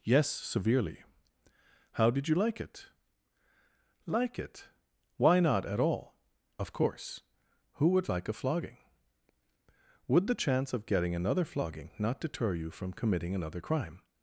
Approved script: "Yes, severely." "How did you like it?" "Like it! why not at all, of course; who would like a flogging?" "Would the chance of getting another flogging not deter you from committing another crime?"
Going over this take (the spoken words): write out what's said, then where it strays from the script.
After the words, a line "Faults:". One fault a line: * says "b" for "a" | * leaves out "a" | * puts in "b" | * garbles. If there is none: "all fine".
"Yes, severely." "How did you like it?" "Like it! why not at all, of course; who would like a flogging?" "Would the chance of getting another flogging not deter you from committing another crime?"
Faults:
all fine